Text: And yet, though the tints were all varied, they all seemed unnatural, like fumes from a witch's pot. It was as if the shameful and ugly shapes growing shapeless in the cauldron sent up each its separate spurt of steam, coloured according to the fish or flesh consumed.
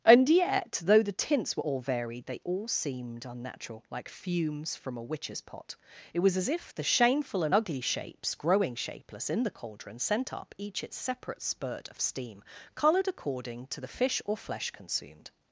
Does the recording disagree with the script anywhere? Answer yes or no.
no